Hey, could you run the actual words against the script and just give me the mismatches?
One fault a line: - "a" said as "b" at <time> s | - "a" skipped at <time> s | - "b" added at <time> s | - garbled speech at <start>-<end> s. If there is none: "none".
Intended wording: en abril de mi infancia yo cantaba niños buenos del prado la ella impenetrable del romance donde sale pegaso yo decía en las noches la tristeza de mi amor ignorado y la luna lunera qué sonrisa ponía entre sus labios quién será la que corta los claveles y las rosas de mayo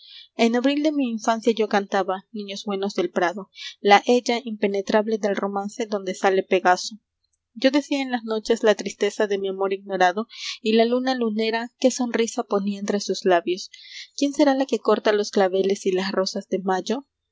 none